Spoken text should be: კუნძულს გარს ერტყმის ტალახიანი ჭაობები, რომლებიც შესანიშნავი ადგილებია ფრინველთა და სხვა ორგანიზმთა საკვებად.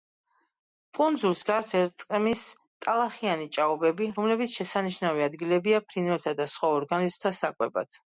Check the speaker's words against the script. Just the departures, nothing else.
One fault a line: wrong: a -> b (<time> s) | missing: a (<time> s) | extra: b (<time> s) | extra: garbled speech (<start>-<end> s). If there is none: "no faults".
no faults